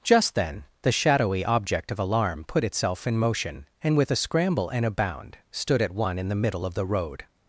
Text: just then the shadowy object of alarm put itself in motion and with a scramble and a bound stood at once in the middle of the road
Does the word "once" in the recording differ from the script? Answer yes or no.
yes